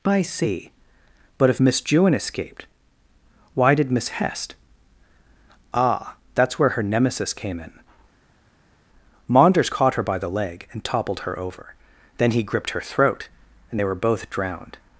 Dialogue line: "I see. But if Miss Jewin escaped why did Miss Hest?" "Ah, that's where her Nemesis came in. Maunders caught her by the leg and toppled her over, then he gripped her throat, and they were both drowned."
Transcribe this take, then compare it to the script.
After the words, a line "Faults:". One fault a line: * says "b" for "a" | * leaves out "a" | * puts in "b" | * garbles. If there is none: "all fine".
"I see. But if Miss Jewin escaped why did Miss Hest?" "Ah, that's where her Nemesis came in. Maunders caught her by the leg and toppled her over, then he gripped her throat, and they were both drowned."
Faults:
all fine